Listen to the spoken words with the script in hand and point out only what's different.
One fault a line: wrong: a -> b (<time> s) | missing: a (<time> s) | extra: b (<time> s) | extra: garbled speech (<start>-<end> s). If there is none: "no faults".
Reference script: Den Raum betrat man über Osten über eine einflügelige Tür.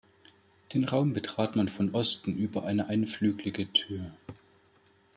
wrong: über -> von (1.7 s)